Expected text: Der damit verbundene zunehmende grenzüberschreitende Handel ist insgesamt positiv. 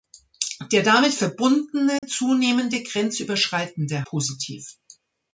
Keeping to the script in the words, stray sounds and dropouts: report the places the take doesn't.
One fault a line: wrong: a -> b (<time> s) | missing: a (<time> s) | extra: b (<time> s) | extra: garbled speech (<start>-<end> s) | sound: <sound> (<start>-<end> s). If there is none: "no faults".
sound: dropout (2.0-2.0 s)
missing: Handel ist insgesamt (4.1 s)